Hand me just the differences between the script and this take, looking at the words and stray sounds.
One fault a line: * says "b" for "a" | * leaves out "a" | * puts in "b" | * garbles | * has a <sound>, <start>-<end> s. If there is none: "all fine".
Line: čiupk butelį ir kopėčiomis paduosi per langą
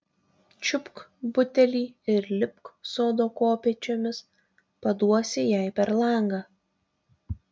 * puts in "lipk sodo"
* puts in "jai"